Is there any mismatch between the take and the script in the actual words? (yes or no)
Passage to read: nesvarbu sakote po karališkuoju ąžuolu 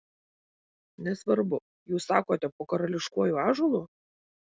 yes